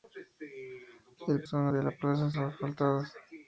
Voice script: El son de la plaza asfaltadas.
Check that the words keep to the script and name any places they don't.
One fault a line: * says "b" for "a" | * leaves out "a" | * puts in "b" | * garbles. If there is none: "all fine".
all fine